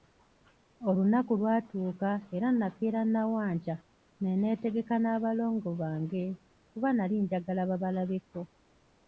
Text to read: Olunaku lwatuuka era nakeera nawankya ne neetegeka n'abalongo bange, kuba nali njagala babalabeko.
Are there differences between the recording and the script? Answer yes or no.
no